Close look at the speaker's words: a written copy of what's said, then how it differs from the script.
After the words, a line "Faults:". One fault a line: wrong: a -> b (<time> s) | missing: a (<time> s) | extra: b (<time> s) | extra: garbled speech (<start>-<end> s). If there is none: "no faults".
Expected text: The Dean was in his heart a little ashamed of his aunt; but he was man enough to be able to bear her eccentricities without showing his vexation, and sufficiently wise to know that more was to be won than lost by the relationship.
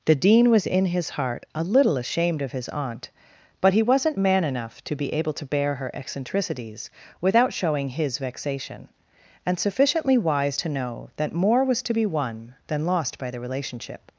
The Dean was in his heart a little ashamed of his aunt; but he wasn't man enough to be able to bear her eccentricities without showing his vexation, and sufficiently wise to know that more was to be won than lost by the relationship.
Faults:
wrong: was -> wasn't (3.8 s)